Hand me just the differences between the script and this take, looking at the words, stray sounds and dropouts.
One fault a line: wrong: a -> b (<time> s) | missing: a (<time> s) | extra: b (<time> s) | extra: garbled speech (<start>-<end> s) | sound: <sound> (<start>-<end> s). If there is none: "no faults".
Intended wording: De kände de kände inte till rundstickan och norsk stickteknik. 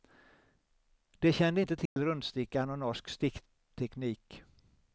missing: de kände (1.6 s)
sound: dropout (1.9-2.0 s)